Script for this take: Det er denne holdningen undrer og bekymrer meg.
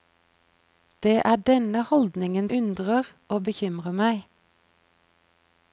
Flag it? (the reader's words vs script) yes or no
no